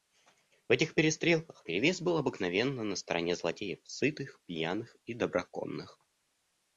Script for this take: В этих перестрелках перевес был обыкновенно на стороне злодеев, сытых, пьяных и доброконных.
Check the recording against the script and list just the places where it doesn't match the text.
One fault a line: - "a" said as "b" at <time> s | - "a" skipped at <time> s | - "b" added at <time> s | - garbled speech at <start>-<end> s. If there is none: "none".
none